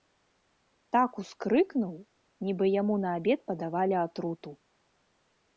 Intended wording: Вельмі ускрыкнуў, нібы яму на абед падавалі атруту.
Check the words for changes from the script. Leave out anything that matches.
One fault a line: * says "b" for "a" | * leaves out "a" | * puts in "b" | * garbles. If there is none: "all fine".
* says "Так" for "Вельмі"